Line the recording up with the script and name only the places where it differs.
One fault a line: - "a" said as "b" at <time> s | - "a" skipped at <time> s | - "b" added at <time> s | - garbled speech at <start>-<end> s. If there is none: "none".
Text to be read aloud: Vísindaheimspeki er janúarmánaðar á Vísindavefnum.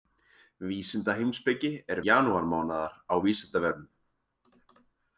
none